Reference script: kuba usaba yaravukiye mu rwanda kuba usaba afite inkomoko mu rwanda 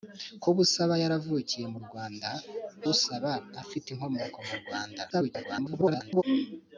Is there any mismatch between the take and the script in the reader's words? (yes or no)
yes